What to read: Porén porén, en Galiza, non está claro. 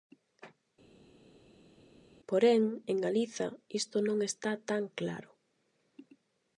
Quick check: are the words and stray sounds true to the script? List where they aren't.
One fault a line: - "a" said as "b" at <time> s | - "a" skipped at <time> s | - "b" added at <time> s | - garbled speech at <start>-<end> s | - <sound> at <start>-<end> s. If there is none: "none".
- "porén" skipped at 2.6 s
- "isto" added at 3.8 s
- "tan" added at 4.7 s